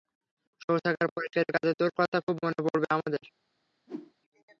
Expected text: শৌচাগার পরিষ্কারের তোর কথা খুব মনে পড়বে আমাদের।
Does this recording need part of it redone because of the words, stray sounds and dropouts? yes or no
yes